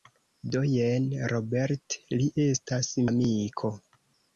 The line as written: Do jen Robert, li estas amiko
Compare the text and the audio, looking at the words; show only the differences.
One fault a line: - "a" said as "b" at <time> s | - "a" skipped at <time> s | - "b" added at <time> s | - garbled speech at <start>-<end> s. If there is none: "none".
none